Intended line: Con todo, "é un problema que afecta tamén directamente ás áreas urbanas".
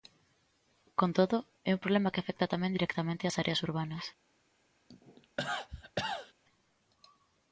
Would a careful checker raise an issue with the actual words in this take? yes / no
no